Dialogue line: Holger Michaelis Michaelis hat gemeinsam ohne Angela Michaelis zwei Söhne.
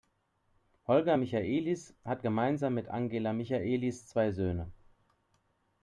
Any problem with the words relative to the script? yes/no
yes